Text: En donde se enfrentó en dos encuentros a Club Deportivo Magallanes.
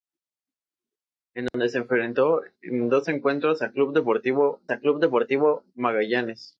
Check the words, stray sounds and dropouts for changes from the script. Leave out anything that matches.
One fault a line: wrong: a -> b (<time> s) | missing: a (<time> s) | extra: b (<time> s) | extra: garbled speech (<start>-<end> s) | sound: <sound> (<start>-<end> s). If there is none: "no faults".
sound: dropout (1.5-1.5 s)
extra: a Club Deportivo (4.7 s)